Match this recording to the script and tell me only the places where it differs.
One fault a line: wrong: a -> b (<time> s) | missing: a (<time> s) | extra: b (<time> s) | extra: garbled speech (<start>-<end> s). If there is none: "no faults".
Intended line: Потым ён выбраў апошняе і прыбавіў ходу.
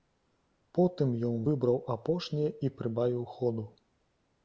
no faults